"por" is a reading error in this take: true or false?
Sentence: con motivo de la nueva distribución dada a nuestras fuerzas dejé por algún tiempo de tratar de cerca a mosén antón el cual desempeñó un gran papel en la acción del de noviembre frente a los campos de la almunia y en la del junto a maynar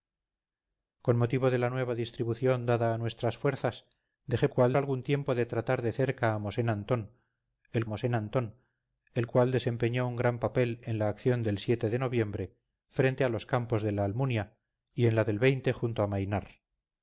true